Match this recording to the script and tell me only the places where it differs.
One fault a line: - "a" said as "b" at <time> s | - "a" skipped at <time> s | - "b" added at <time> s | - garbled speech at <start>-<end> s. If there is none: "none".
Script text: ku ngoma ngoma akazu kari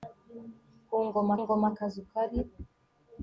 none